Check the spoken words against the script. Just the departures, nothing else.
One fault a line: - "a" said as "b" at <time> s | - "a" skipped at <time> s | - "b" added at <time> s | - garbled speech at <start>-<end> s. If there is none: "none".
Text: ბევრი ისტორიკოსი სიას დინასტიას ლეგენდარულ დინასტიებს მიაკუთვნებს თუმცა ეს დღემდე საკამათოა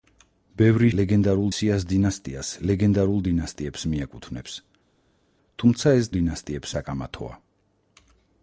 - "ისტორიკოსი" said as "ლეგენდარულ" at 1.0 s
- "დღემდე" said as "დინასტიებს" at 6.2 s